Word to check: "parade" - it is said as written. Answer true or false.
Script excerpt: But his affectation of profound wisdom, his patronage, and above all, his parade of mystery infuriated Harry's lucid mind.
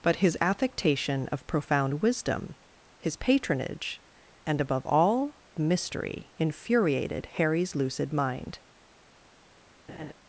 false